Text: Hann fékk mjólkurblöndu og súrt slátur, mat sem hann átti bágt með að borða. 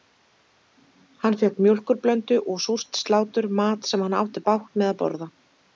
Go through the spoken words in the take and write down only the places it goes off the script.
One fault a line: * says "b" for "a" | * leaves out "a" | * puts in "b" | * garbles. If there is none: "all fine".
all fine